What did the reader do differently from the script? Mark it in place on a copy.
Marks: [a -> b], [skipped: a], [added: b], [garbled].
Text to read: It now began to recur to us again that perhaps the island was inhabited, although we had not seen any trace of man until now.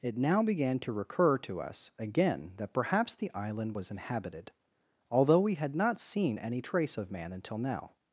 It now began to recur to us again that perhaps the island was inhabited, although we had not seen any trace of man until now.